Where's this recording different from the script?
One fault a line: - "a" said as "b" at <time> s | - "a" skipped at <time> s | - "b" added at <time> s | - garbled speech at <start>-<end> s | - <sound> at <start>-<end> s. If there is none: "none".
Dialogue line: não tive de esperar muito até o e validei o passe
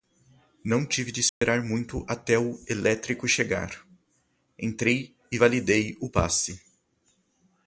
- dropout at 1.3-1.4 s
- "elétrico chegar entrei" added at 2.7 s